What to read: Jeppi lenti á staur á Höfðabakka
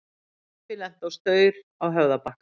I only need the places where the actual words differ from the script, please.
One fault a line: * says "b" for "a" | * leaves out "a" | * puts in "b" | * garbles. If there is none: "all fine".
all fine